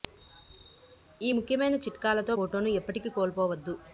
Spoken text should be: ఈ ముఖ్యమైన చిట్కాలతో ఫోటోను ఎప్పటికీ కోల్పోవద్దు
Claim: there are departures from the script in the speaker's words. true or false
false